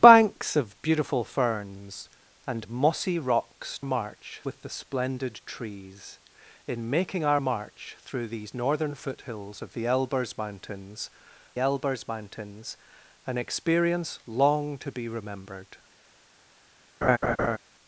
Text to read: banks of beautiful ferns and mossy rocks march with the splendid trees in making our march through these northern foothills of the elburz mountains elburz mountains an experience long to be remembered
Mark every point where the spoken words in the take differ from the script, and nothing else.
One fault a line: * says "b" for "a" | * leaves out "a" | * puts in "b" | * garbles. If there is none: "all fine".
all fine